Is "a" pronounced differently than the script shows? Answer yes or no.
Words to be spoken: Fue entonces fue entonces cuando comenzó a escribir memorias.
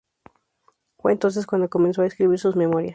no